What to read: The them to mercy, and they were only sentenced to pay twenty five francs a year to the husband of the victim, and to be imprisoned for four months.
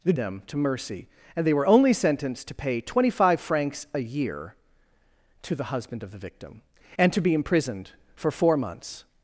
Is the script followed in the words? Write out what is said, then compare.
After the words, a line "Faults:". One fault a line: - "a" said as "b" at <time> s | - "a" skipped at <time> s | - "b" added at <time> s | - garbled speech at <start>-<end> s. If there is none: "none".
The them to mercy, and they were only sentenced to pay twenty five francs a year to the husband of the victim, and to be imprisoned for four months.
Faults:
none